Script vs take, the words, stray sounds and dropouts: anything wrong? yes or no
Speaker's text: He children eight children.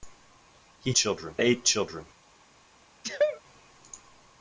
yes